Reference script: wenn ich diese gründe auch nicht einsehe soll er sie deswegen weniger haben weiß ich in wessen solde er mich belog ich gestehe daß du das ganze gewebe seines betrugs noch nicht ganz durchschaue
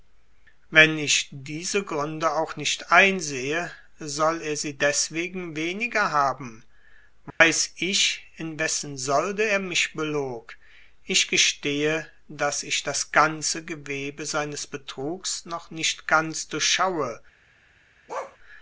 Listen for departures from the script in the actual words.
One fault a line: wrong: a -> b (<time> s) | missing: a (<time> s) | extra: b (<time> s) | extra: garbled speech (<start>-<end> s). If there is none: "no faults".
wrong: du -> ich (12.6 s)